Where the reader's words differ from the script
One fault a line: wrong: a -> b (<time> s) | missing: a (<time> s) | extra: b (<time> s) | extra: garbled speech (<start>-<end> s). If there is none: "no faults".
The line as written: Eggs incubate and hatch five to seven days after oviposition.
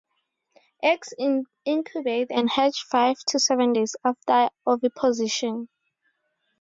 no faults